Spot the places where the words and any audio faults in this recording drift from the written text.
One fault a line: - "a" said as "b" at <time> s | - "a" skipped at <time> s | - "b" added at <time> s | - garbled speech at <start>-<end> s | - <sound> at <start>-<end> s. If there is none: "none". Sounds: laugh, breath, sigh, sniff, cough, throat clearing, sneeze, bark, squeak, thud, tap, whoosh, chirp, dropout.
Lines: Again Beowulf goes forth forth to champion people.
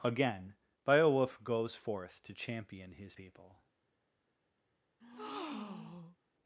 - "forth" skipped at 2.2 s
- "his" added at 2.9 s
- breath at 5.0-6.2 s